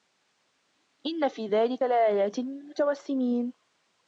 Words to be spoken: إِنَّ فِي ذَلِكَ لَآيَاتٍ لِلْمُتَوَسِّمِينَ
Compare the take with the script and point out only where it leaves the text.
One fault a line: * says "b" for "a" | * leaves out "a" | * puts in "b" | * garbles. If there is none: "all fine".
all fine